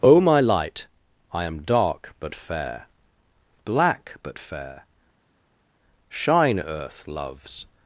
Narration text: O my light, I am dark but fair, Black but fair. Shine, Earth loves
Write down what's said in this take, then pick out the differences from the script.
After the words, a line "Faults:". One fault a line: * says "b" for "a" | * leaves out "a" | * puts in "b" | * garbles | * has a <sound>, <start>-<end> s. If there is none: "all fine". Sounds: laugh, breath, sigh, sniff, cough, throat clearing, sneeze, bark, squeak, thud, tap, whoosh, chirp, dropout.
O my light, I am dark but fair, Black but fair. Shine, Earth loves
Faults:
all fine